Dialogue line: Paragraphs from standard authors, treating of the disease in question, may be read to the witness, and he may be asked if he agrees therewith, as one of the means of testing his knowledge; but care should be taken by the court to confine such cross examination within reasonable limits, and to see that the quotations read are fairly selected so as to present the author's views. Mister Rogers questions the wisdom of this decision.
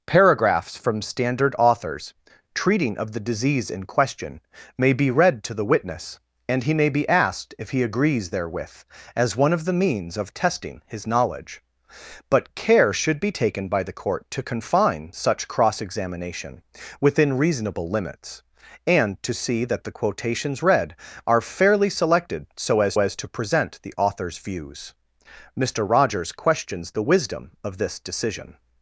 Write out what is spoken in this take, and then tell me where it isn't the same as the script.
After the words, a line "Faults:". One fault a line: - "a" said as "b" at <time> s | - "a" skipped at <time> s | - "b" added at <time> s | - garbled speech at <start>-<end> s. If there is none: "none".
Paragraphs from standard authors, treating of the disease in question, may be read to the witness, and he may be asked if he agrees therewith, as one of the means of testing his knowledge; but care should be taken by the court to confine such cross examination within reasonable limits, and to see that the quotations read are fairly selected so as as to present the author's views. Mister Rogers questions the wisdom of this decision.
Faults:
- "as" added at 23.0 s